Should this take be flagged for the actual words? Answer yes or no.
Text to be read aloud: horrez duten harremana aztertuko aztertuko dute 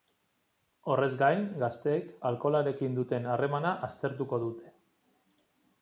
yes